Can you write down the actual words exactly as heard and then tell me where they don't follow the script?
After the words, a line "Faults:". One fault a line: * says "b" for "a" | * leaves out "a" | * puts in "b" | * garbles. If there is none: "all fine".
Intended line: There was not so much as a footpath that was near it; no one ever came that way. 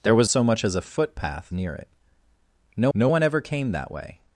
There was so much as a footpath near it; no no one ever came that way.
Faults:
* leaves out "not"
* leaves out "that was"
* puts in "no"